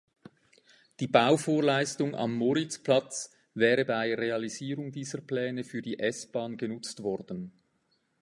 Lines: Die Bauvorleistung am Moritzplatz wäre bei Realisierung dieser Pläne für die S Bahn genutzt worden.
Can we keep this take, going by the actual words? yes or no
yes